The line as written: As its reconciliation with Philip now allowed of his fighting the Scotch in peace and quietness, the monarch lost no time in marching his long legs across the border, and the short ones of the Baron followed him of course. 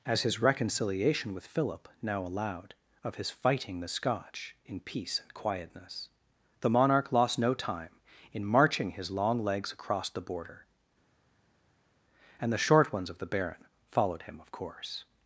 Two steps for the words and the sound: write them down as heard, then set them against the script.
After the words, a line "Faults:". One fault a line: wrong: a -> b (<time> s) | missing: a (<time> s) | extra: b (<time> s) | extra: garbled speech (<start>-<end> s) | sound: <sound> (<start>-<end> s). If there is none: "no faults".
As his reconciliation with Philip now allowed of his fighting the Scotch in peace and quietness, the monarch lost no time in marching his long legs across the border, and the short ones of the Baron followed him of course.
Faults:
wrong: its -> his (0.2 s)